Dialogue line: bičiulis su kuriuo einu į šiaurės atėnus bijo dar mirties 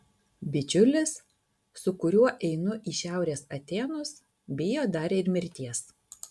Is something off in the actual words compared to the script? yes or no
yes